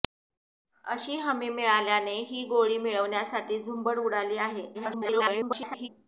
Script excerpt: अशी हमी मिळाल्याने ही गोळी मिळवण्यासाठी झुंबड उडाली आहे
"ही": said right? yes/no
yes